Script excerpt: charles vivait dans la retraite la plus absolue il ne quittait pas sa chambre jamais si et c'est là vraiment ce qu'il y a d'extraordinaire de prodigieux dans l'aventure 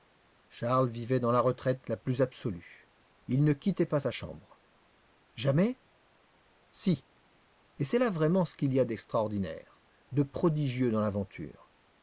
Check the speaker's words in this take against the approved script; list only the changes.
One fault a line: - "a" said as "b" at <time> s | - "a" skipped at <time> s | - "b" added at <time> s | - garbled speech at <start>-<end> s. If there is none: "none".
none